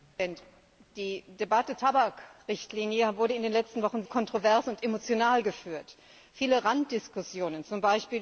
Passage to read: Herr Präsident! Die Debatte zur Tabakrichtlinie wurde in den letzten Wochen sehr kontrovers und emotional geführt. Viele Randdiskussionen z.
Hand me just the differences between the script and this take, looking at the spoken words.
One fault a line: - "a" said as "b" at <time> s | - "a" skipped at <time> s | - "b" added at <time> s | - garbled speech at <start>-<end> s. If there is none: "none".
- "zur" skipped at 1.8 s
- "sehr" skipped at 4.0 s